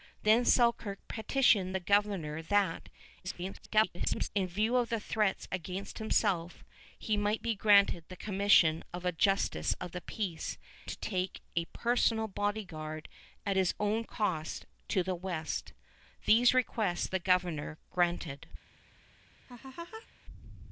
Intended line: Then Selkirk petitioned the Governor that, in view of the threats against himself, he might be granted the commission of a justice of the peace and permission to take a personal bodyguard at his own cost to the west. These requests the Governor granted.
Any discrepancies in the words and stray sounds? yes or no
yes